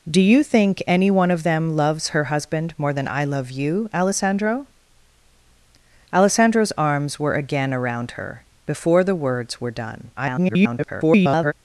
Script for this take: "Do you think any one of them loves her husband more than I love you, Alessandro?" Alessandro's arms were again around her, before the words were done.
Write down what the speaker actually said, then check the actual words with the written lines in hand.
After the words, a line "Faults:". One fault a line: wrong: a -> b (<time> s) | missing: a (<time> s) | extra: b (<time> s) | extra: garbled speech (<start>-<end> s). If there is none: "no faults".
"Do you think any one of them loves her husband more than I love you, Alessandro?" Alessandro's arms were again around her, before the words were done. [garbled]
Faults:
extra: garbled speech (10.2-11.5 s)